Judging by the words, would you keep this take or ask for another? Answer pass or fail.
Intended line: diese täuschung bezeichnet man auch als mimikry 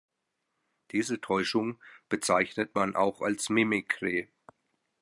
pass